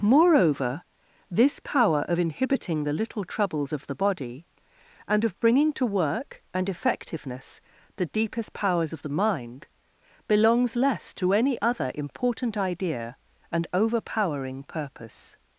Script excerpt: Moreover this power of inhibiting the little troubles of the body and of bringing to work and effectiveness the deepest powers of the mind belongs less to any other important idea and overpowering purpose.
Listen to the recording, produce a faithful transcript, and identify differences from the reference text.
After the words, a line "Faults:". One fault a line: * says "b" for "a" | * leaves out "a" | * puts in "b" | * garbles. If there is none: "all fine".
Moreover this power of inhibiting the little troubles of the body and of bringing to work and effectiveness the deepest powers of the mind belongs less to any other important idea and overpowering purpose.
Faults:
all fine